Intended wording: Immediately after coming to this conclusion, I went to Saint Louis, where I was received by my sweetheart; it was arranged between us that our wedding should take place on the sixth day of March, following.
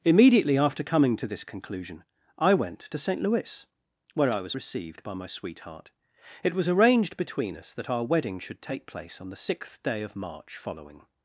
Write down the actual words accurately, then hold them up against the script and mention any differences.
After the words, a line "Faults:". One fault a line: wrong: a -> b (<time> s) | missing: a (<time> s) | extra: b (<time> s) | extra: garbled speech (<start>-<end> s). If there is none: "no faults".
Immediately after coming to this conclusion, I went to Saint Louis, where I was received by my sweetheart; it was arranged between us that our wedding should take place on the sixth day of March, following.
Faults:
no faults